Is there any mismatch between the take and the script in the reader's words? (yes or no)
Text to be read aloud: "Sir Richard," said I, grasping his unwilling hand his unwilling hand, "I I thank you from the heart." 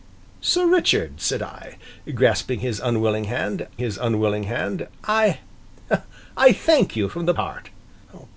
no